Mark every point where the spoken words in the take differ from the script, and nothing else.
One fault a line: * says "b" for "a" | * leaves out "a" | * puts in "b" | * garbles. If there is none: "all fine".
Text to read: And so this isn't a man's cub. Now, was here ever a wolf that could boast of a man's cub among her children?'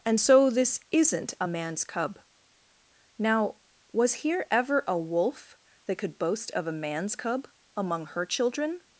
all fine